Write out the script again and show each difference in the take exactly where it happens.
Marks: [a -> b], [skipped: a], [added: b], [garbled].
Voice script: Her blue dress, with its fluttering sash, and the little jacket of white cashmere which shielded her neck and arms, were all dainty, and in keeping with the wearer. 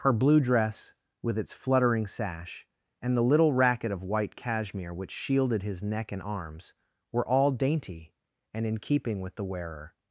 Her blue dress, with its fluttering sash, and the little [jacket -> racket] of white cashmere which shielded [her -> his] neck and arms, were all dainty, and in keeping with the wearer.